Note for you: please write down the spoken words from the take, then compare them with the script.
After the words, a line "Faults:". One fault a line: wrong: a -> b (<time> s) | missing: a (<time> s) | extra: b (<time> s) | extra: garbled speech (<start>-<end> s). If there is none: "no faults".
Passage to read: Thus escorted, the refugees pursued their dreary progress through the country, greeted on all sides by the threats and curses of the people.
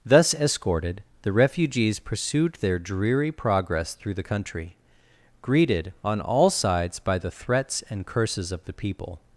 Thus escorted, the refugees pursued their dreary progress through the country, greeted on all sides by the threats and curses of the people.
Faults:
no faults